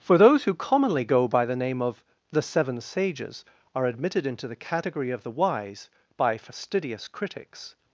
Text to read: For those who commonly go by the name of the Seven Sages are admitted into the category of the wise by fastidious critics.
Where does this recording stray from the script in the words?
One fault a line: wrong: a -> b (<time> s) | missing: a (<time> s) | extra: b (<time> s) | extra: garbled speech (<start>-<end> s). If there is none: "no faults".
no faults